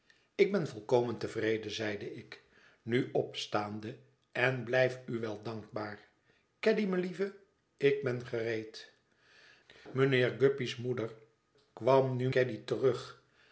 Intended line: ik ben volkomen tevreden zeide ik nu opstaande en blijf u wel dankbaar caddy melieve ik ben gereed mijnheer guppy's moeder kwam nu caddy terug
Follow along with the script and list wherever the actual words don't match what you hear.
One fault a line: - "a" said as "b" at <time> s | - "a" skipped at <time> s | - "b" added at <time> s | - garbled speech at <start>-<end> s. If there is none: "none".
none